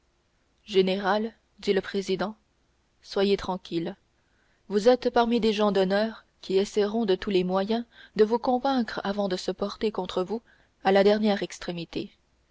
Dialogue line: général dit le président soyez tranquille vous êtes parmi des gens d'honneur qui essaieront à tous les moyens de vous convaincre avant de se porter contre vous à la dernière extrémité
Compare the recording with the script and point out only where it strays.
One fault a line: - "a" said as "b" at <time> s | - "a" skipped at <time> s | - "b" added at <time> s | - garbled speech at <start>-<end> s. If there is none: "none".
- "à" said as "de" at 7.0 s